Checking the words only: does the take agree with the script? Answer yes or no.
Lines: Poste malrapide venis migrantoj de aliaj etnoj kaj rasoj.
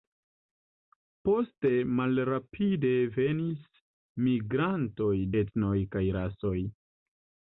no